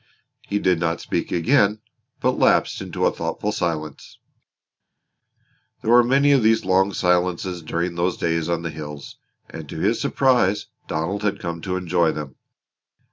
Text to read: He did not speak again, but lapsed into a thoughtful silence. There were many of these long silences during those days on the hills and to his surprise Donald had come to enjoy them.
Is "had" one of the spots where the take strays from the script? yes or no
no